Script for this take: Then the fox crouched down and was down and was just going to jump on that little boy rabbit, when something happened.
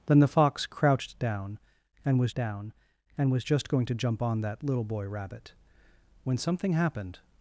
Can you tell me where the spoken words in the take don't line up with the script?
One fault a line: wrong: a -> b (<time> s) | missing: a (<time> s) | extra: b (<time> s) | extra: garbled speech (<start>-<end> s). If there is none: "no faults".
no faults